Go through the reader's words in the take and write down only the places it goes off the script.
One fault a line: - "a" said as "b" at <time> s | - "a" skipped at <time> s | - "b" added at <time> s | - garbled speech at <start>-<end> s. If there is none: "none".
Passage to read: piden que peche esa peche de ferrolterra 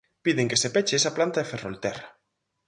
- "se" added at 0.6 s
- "peche" said as "planta" at 1.1 s